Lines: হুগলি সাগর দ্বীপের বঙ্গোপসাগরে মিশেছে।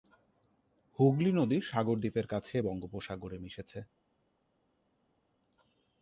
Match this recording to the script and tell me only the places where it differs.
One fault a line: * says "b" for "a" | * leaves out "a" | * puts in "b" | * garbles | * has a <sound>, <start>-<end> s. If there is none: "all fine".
* puts in "নদী"
* puts in "কাছে"